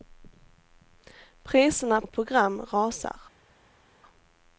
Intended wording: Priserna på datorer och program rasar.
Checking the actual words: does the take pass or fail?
fail